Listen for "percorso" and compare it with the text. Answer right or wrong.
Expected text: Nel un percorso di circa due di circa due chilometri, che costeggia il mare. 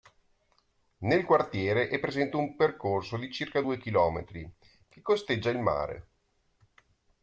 wrong